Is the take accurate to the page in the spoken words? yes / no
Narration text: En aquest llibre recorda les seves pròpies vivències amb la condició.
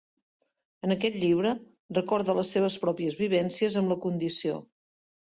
yes